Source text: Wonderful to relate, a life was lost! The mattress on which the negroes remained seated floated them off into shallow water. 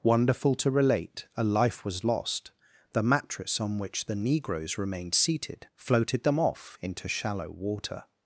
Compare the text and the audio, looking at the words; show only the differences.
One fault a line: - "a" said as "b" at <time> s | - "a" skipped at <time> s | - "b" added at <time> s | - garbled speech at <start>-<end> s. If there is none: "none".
none